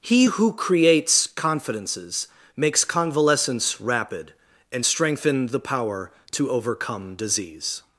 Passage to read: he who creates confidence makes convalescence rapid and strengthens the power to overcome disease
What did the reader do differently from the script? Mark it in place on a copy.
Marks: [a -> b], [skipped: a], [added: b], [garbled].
he who creates [confidence -> confidences] makes convalescence rapid and [strengthens -> strengthen] the power to overcome disease